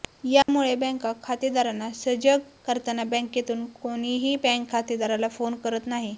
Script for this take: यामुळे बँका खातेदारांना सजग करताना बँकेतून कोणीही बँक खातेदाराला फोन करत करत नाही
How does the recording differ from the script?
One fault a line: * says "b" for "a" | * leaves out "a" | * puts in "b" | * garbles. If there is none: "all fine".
* leaves out "करत"